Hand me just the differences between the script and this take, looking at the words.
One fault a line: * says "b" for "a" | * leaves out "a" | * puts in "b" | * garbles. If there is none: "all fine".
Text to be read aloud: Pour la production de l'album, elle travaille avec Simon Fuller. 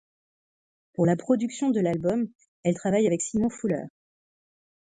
all fine